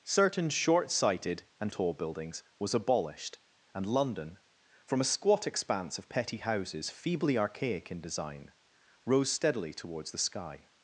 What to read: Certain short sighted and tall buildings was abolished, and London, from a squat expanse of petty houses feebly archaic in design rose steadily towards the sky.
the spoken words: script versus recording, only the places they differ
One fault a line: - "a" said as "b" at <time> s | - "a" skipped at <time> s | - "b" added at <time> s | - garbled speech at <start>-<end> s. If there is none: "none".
none